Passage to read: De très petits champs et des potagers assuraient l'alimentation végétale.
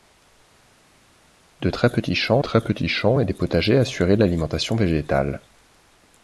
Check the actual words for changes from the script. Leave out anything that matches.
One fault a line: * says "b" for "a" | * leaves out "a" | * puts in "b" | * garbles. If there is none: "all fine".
* puts in "très petits champs"